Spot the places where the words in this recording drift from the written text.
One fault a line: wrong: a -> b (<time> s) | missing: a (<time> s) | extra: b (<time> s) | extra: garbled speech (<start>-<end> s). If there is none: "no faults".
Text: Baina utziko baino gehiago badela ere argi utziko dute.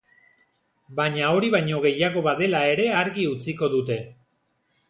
wrong: utziko -> hori (1.3 s)